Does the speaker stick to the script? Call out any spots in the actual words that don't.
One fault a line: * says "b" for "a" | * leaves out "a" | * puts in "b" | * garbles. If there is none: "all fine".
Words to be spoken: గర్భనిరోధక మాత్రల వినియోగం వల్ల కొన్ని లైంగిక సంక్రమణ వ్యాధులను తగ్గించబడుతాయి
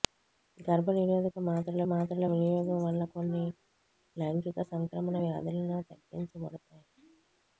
* puts in "మాత్రల"